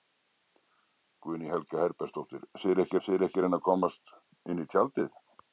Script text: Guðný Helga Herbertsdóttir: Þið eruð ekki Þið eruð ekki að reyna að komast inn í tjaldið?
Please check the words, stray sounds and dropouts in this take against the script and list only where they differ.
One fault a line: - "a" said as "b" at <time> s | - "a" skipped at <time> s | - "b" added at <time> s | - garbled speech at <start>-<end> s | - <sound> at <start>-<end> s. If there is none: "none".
none